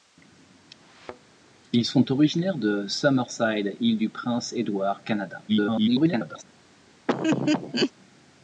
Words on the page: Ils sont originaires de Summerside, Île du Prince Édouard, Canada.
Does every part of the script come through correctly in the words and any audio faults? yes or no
no